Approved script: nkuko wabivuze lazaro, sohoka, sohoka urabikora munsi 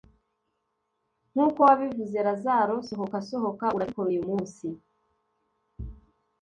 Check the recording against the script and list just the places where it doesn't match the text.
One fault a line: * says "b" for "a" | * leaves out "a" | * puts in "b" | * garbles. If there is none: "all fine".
* puts in "uyu"